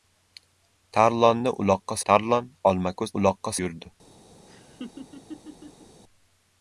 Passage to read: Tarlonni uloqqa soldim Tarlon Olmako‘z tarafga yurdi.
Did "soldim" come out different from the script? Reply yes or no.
yes